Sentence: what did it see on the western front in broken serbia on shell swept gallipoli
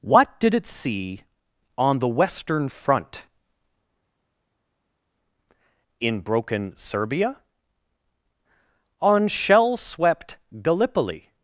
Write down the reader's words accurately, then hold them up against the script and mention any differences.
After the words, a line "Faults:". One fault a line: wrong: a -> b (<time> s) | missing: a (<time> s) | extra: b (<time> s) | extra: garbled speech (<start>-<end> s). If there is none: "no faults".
what did it see on the western front in broken serbia on shell swept gallipoli
Faults:
no faults